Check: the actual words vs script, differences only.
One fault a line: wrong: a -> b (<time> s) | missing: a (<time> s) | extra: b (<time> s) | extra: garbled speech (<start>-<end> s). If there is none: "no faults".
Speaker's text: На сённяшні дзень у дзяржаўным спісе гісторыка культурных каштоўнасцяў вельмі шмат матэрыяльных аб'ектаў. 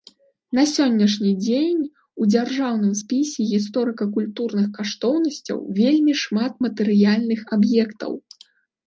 no faults